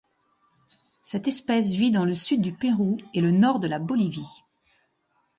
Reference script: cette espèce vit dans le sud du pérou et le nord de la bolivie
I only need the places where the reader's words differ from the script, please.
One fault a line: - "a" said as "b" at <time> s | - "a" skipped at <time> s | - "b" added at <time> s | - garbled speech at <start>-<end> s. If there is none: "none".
none